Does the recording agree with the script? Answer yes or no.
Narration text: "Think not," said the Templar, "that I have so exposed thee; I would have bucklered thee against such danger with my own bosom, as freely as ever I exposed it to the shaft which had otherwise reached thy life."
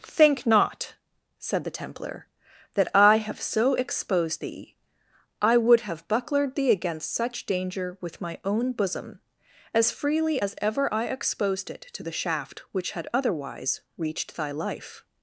yes